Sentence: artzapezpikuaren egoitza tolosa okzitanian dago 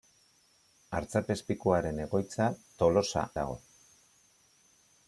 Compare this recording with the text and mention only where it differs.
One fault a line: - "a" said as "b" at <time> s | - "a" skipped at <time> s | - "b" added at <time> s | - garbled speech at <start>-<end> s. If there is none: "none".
- "okzitanian" skipped at 3.3 s